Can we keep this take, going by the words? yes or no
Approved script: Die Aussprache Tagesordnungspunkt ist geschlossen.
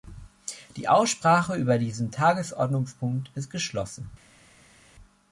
no